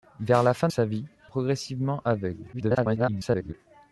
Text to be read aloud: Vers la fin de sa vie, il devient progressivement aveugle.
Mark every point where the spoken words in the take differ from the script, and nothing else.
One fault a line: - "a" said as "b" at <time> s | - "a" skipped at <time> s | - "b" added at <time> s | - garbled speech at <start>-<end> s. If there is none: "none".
- "de" skipped at 0.7 s
- "il devient" skipped at 1.0 s
- garbled speech at 2.5-3.5 s